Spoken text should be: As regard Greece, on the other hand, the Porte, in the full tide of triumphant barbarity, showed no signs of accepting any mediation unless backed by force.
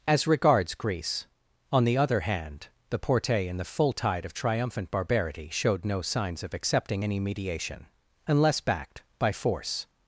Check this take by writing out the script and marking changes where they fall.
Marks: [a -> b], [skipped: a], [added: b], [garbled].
As [regard -> regards] Greece, on the other hand, the Porte, in the full tide of triumphant barbarity, showed no signs of accepting any mediation unless backed by force.